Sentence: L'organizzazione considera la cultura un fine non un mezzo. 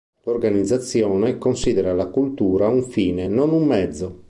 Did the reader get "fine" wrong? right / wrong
right